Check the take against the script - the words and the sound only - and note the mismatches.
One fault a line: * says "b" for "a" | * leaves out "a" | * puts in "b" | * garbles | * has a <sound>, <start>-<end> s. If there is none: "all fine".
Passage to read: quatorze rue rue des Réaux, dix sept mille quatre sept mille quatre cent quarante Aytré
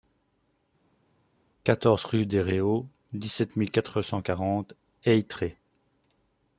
* leaves out "rue"
* leaves out "sept mille quatre"